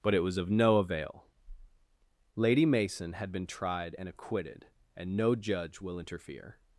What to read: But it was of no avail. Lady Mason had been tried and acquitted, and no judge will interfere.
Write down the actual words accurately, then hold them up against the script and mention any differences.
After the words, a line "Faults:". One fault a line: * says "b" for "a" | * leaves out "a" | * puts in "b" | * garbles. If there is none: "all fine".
But it was of no avail. Lady Mason had been tried and acquitted, and no judge will interfere.
Faults:
all fine